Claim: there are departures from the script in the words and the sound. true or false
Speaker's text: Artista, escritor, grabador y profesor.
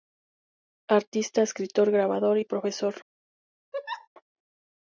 true